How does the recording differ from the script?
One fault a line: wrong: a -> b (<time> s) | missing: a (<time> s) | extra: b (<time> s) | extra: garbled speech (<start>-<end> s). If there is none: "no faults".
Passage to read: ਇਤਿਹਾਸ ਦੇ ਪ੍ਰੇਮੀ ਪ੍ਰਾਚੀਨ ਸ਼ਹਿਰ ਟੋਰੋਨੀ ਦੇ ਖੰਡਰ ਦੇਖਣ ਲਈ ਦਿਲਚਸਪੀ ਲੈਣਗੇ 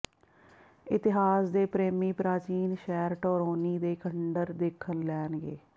missing: ਲਈ ਦਿਲਚਸਪੀ (5.0 s)